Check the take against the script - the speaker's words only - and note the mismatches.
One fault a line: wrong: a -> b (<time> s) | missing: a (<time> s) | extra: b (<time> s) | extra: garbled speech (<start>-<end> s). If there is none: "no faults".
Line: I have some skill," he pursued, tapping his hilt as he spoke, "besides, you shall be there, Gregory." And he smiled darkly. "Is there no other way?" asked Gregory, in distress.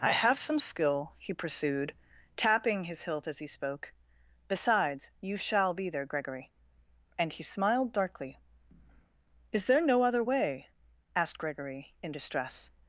no faults